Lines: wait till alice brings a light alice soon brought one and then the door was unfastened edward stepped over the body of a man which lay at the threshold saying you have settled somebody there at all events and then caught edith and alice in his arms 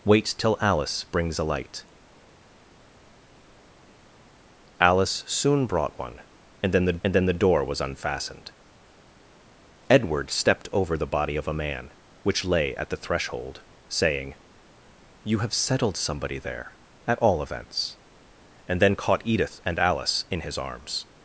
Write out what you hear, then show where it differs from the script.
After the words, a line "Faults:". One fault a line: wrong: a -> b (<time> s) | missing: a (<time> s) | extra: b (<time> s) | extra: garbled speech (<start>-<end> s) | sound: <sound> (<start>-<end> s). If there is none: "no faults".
wait till alice brings a light alice soon brought one and then the and then the door was unfastened edward stepped over the body of a man which lay at the threshold saying you have settled somebody there at all events and then caught edith and alice in his arms
Faults:
extra: and then the (7.0 s)